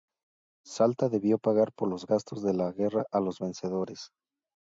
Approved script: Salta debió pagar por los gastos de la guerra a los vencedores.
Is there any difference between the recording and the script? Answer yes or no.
no